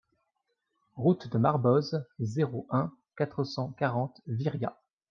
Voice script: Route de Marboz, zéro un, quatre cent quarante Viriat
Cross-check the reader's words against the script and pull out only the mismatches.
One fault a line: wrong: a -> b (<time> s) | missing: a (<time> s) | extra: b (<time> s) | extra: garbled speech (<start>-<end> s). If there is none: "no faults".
no faults